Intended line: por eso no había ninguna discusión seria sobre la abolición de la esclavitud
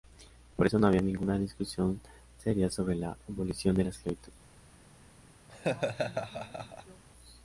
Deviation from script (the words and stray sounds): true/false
true